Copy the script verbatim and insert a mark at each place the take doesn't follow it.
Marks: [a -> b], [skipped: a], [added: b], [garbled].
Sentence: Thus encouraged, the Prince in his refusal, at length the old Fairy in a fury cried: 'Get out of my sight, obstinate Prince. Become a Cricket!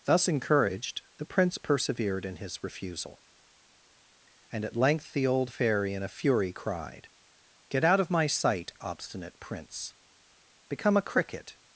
Thus encouraged, the Prince [added: persevered] in his refusal, [added: and] at length the old Fairy in a fury cried: 'Get out of my sight, obstinate Prince. Become a Cricket!